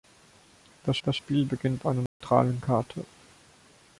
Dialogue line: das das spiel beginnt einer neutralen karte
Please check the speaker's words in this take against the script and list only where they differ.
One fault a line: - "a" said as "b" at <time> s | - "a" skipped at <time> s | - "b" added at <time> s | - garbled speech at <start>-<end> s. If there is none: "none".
none